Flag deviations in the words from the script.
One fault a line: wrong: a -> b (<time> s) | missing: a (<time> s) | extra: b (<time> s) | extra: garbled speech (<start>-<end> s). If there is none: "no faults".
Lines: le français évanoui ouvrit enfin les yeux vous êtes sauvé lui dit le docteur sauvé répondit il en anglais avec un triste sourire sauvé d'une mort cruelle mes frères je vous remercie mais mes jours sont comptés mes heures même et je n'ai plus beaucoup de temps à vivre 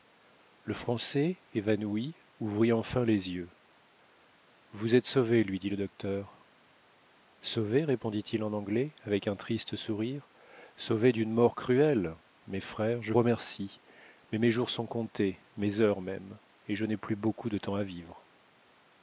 missing: vous (13.1 s)